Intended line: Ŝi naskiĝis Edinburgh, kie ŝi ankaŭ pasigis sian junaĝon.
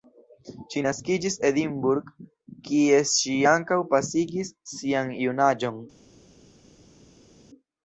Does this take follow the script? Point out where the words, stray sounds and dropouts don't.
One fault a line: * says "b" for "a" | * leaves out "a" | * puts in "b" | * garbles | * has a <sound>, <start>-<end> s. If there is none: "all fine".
all fine